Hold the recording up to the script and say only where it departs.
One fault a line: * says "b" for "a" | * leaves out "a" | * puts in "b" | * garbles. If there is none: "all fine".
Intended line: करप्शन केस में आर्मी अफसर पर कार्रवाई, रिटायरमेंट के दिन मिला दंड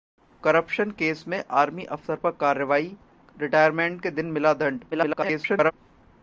* garbles